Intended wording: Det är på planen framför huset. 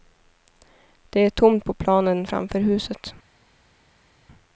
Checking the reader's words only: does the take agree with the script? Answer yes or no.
no